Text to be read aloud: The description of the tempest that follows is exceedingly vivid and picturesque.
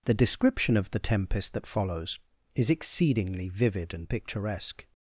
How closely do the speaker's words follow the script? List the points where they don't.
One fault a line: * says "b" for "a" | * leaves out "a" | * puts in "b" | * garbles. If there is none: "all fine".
all fine